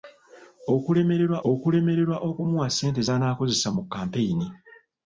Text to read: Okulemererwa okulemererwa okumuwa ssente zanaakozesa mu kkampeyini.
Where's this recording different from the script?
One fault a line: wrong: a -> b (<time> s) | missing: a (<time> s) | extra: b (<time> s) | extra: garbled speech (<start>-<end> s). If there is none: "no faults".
no faults